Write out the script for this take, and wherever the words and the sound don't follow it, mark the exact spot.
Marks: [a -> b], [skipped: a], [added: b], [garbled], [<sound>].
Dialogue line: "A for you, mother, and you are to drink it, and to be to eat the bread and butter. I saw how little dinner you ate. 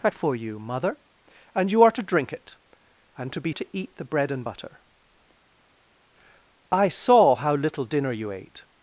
"A for you, mother, and you are to drink it, and to be to eat the bread and butter. I saw how little dinner you ate.